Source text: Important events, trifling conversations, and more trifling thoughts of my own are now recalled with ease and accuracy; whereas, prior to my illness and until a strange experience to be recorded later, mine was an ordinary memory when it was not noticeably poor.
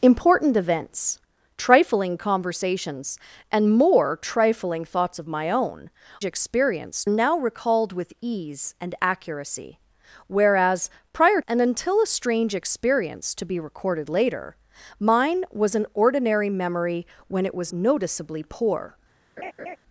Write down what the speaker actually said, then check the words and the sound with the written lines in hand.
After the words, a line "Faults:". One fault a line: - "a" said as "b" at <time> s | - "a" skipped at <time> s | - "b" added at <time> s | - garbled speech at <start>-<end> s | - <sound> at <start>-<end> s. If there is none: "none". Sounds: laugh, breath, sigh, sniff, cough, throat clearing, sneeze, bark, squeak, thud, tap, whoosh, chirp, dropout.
Important events, trifling conversations, and more trifling thoughts of my own experience now recalled with ease and accuracy; whereas, prior and until a strange experience to be recorded later, mine was an ordinary memory when it was noticeably poor.
Faults:
- "are" said as "experience" at 6.2 s
- "to my illness" skipped at 11.4 s
- "not" skipped at 17.7 s
- laugh at 19.4-19.8 s